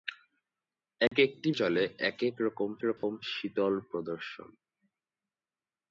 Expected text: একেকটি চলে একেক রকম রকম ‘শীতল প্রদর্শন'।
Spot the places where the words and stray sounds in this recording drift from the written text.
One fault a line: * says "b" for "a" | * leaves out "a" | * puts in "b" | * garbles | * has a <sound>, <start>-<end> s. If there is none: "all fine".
* has a dropout, 1.1-1.1 s
* has a dropout, 3.0-3.0 s